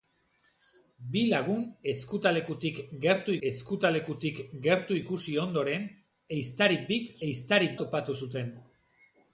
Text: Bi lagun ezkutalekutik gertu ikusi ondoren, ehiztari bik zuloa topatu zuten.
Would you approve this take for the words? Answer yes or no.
no